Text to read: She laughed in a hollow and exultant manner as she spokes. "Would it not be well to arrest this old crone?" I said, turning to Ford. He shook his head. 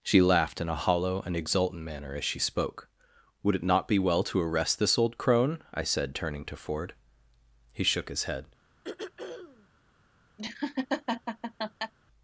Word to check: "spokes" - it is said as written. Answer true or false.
false